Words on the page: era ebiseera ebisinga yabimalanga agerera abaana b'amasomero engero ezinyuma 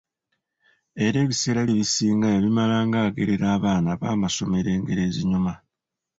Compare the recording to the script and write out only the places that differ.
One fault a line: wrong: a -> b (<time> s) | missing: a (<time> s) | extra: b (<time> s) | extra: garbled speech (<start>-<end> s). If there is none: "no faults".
no faults